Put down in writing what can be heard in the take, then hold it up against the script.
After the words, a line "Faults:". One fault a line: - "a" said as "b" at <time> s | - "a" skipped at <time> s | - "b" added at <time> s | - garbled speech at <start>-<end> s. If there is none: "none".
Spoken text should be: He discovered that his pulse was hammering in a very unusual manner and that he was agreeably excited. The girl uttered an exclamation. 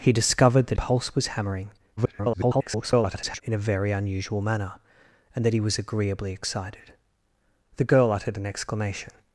He discovered that pulse was hammering [garbled] in a very unusual manner and that he was agreeably excited. The girl uttered an exclamation.
Faults:
- "his" skipped at 0.8 s
- garbled speech at 2.0-3.4 s